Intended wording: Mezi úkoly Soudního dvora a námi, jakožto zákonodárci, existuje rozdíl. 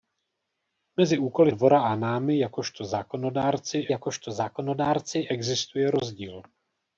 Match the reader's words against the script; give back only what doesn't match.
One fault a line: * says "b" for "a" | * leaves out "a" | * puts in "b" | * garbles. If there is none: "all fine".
* leaves out "Soudního"
* puts in "jakožto zákonodárci"